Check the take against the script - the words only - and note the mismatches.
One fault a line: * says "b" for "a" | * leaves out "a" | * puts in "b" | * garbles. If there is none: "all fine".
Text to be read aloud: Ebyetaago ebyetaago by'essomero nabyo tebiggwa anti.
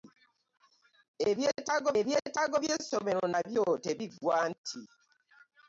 all fine